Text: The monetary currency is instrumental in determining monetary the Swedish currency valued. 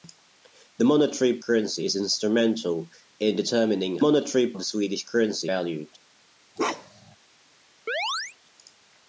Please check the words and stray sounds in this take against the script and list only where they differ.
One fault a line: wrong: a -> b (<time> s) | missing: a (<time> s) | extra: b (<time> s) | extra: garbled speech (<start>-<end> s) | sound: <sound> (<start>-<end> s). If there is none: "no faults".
sound: bark (6.6-7.2 s)
sound: chirp (7.9-8.4 s)